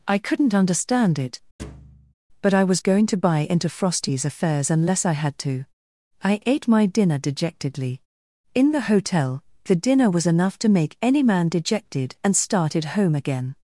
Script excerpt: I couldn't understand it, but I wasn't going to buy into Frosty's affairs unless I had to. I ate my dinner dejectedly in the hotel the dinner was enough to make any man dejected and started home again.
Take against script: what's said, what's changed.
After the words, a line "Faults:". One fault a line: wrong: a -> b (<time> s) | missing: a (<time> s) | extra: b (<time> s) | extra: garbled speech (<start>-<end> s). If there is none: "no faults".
I couldn't understand it, but I was going to buy into Frosty's affairs unless I had to. I ate my dinner dejectedly in the hotel the dinner was enough to make any man dejected and started home again.
Faults:
wrong: wasn't -> was (2.6 s)